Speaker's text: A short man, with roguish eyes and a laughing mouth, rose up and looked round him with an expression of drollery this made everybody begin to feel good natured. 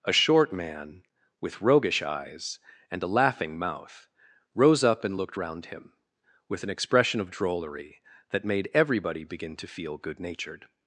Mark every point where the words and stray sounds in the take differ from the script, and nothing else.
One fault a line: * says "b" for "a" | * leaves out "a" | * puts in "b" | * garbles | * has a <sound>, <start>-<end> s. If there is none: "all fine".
* says "that" for "this"